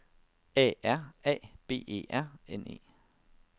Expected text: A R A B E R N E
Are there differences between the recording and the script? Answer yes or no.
no